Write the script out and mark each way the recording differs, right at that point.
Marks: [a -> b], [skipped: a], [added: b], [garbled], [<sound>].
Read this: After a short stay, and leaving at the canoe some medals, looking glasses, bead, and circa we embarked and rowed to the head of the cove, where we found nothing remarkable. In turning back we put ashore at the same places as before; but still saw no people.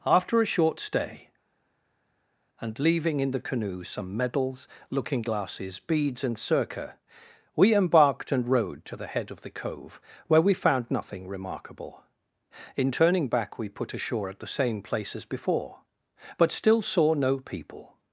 After a short stay, and leaving [at -> in] the canoe some medals, looking glasses, [bead, -> beads] and circa we embarked and rowed to the head of the cove, where we found nothing remarkable. In turning back we put ashore at the same [places -> place] as before; but still saw no people.